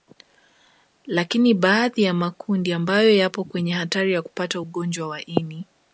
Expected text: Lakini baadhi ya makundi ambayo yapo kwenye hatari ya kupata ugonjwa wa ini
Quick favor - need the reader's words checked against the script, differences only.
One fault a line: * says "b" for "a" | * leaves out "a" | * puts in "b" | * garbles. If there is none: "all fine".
all fine